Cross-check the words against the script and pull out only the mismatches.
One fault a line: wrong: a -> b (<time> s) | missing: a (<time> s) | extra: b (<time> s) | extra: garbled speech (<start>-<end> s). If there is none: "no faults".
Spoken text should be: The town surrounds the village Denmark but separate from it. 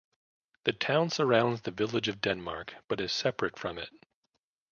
extra: of (2.1 s)
extra: is (3.0 s)